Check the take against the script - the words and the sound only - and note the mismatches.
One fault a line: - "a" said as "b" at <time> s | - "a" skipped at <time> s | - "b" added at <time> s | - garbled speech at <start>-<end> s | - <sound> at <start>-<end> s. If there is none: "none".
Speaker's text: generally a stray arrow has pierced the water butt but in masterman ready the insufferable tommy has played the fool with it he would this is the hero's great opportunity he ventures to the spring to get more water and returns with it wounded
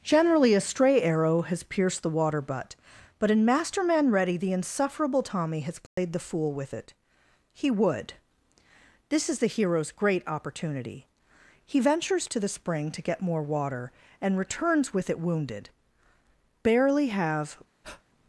- dropout at 5.9-6.0 s
- "barely have" added at 16.6 s
- breath at 17.8-18.0 s